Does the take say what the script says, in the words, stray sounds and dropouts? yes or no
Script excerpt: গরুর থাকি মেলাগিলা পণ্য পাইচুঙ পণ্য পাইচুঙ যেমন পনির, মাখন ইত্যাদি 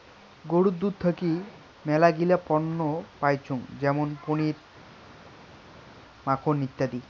no